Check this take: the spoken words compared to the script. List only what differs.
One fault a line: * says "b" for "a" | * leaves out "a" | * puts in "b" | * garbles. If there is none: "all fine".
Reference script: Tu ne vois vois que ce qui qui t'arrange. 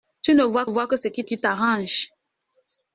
all fine